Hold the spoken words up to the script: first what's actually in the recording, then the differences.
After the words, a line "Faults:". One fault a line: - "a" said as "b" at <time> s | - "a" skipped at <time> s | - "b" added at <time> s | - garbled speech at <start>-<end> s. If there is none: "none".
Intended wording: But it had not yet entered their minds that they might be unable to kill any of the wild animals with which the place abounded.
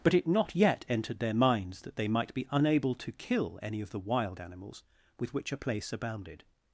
But it not yet entered their minds that they might be unable to kill any of the wild animals with which a place abounded.
Faults:
- "had" skipped at 0.3 s
- "the" said as "a" at 5.5 s